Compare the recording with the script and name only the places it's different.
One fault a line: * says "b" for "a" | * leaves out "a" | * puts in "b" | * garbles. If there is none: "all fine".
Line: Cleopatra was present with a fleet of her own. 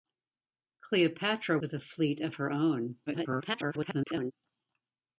* leaves out "was present"
* garbles